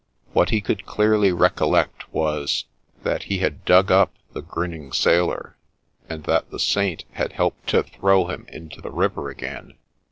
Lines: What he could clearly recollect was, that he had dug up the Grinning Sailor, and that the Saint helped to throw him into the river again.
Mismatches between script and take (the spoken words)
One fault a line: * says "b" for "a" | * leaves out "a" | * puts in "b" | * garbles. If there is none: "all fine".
* puts in "had"